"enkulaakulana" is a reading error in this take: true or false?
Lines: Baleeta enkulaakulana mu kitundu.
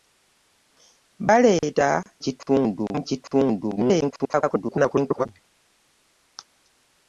true